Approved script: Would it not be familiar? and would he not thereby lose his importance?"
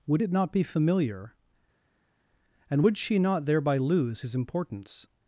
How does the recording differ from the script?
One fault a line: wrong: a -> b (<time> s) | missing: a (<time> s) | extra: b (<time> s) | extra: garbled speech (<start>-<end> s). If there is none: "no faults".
wrong: he -> she (3.0 s)